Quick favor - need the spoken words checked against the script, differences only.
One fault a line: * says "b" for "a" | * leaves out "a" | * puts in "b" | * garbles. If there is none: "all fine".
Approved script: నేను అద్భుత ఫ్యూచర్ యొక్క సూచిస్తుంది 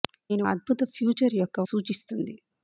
all fine